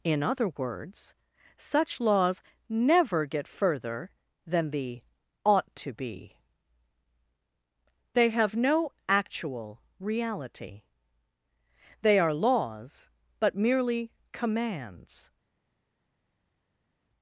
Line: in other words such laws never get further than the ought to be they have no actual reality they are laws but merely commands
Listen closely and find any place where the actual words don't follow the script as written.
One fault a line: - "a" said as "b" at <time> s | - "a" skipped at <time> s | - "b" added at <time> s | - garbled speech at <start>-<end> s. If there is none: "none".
none